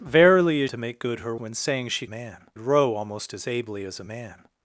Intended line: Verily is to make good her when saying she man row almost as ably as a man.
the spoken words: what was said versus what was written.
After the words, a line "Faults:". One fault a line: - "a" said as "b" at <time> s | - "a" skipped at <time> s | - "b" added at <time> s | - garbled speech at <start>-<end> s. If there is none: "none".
Verily is to make good her when saying she man row almost as ably as a man.
Faults:
none